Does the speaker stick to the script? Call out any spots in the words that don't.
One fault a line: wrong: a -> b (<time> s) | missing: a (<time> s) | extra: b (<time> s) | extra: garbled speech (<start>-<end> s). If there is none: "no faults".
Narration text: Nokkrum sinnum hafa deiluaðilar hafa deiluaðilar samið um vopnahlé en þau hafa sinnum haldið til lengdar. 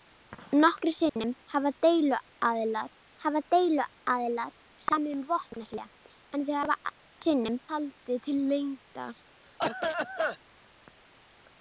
no faults